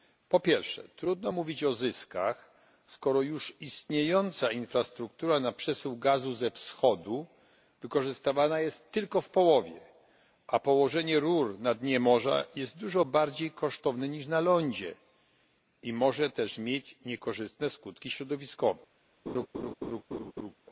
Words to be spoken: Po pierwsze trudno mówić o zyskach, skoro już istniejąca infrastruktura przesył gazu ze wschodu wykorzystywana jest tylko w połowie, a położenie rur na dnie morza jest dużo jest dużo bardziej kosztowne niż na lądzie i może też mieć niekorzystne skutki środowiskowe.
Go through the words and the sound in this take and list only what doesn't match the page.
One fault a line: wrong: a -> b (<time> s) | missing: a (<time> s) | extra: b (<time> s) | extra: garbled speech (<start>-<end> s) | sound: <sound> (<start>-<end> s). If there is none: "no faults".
extra: na (5.4 s)
missing: jest dużo (13.0 s)
sound: laugh (19.3-20.5 s)